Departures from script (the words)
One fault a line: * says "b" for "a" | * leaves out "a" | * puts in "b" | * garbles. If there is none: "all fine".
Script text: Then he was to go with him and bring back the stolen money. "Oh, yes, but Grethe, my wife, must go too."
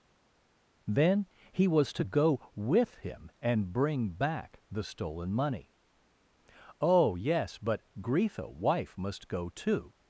* leaves out "my"